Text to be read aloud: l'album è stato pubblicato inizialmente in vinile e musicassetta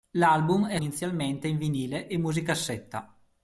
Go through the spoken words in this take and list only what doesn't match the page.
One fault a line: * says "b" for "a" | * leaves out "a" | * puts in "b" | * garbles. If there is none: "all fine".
* leaves out "stato pubblicato"